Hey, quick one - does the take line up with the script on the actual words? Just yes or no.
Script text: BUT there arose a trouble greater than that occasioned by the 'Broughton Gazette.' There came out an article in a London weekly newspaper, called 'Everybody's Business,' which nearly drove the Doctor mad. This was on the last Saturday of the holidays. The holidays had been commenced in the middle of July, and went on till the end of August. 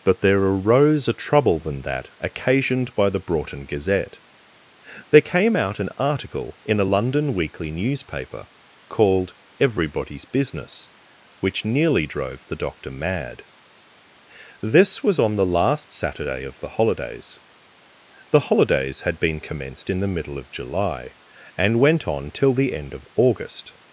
no